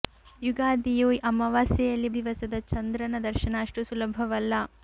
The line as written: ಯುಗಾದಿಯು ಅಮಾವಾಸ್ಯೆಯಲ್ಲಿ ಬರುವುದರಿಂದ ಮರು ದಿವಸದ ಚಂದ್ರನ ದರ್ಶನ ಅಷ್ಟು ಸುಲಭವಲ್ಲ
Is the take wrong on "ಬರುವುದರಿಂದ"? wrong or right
wrong